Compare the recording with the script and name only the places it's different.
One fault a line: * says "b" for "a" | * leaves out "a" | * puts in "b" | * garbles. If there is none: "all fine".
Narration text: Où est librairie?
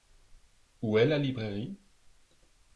* puts in "la"